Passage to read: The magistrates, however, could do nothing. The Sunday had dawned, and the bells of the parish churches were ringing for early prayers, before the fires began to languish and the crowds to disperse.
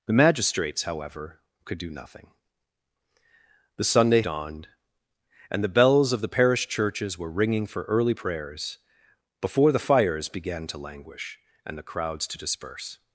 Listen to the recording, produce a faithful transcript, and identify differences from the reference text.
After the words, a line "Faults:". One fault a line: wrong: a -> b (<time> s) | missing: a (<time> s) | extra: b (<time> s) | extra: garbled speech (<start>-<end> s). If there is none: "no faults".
The magistrates, however, could do nothing. The Sunday dawned, and the bells of the parish churches were ringing for early prayers, before the fires began to languish and the crowds to disperse.
Faults:
missing: had (4.2 s)